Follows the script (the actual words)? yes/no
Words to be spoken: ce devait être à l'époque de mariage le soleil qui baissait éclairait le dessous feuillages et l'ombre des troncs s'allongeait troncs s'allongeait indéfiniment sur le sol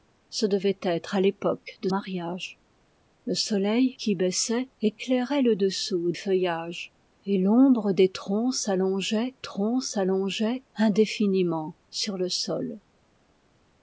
yes